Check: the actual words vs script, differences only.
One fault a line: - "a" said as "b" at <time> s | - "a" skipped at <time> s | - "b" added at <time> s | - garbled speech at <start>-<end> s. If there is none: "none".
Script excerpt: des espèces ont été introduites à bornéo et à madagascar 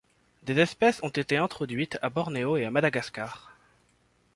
none